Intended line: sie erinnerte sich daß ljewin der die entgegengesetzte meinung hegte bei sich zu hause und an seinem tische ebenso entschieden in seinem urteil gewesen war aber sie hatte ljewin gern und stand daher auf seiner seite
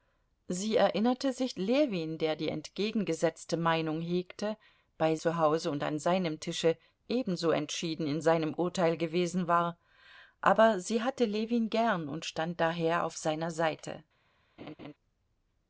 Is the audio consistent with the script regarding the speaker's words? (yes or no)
no